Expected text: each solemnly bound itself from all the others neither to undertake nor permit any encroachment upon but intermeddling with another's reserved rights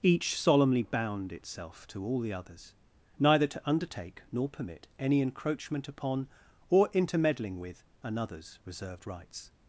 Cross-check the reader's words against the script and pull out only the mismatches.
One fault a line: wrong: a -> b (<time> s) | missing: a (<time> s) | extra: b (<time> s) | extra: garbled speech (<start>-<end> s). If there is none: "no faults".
wrong: from -> to (1.9 s)
wrong: but -> or (6.7 s)